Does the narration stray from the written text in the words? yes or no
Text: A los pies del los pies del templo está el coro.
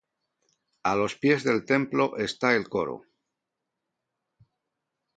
yes